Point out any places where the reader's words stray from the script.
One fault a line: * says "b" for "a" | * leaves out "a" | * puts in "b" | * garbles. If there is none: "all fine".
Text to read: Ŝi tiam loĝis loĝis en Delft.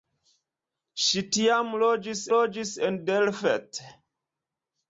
all fine